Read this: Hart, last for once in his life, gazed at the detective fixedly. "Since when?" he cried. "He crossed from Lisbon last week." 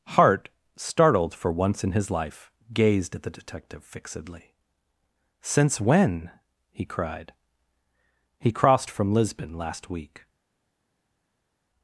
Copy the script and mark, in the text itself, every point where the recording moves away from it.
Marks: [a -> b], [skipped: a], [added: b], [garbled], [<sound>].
Hart, [last -> startled] for once in his life, gazed at the detective fixedly. "Since when?" he cried. "He crossed from Lisbon last week."